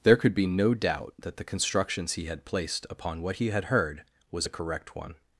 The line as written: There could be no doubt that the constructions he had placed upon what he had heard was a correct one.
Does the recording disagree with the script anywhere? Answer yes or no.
no